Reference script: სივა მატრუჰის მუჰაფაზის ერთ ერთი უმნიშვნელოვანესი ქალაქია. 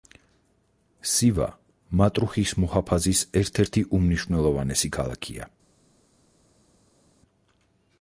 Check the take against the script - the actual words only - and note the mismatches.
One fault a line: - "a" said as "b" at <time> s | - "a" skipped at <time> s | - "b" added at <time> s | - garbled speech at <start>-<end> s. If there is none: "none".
none